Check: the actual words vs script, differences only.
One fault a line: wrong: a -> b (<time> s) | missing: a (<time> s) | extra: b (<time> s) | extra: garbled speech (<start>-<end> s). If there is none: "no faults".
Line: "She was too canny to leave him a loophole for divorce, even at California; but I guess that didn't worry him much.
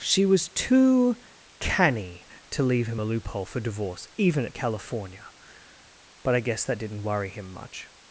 no faults